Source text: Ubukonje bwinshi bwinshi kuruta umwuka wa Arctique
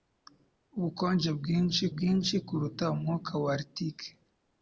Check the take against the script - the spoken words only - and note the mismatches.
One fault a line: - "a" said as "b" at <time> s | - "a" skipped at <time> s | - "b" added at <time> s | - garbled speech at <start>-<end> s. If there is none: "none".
none